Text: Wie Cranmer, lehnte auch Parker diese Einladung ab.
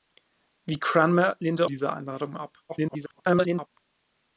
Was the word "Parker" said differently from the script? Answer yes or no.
yes